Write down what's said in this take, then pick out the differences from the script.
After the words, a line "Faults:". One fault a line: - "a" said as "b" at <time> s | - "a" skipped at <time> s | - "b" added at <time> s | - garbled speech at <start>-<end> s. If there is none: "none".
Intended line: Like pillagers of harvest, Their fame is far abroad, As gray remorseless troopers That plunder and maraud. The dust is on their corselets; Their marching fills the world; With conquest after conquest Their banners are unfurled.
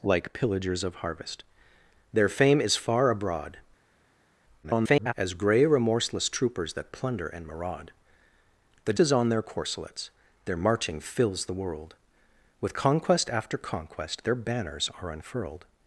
Like pillagers of harvest, Their fame is far abroad, [garbled] As gray remorseless troopers That plunder and maraud. The is on their corselets; Their marching fills the world; With conquest after conquest Their banners are unfurled.
Faults:
- garbled speech at 4.6-5.1 s
- "dust" skipped at 8.9 s